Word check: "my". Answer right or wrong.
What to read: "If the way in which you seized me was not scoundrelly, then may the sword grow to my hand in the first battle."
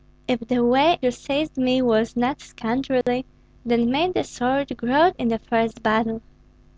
wrong